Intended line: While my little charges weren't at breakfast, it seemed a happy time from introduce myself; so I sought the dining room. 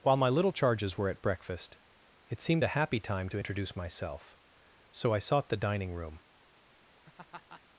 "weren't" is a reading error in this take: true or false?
true